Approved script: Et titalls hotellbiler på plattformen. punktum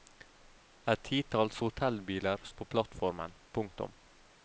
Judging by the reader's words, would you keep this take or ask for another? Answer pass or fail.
pass